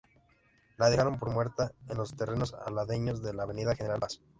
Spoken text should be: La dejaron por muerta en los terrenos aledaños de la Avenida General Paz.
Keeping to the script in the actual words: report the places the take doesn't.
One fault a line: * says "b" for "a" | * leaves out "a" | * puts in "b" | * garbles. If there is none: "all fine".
all fine